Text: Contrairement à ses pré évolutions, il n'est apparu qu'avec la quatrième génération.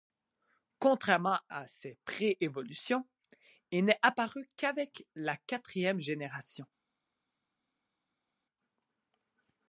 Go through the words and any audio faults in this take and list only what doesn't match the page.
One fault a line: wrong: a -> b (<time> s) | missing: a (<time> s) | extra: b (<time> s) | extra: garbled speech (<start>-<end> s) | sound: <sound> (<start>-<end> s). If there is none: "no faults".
no faults